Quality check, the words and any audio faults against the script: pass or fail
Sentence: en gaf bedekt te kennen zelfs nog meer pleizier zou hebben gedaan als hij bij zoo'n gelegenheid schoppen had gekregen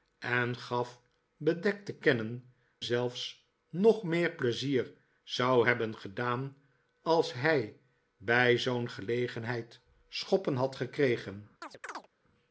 fail